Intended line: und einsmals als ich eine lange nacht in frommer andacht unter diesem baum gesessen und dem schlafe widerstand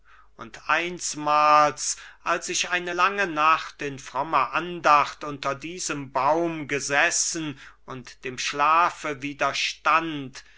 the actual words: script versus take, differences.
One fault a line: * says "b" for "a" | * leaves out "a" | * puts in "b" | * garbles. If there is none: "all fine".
all fine